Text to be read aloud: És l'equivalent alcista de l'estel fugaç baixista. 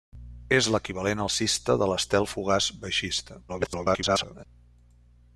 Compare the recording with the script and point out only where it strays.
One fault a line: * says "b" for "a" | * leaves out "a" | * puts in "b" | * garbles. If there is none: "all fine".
* garbles